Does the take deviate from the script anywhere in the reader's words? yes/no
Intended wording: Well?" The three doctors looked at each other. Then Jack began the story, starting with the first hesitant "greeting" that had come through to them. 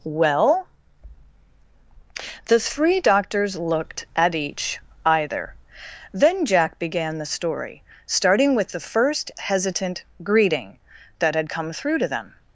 yes